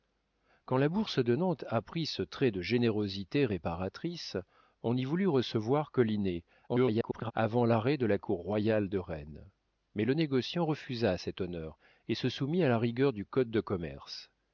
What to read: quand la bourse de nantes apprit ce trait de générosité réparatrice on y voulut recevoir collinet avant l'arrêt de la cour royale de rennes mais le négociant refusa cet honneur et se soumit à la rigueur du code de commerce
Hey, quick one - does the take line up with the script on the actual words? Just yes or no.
no